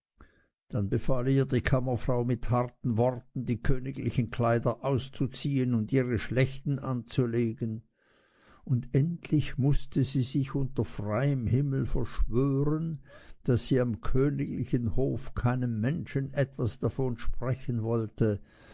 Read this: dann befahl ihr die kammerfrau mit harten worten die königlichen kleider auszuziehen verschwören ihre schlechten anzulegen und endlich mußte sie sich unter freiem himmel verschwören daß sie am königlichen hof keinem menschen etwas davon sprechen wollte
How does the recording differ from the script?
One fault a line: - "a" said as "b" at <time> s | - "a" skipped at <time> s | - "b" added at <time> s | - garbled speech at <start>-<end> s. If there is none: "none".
- "verschwören" said as "und" at 5.7 s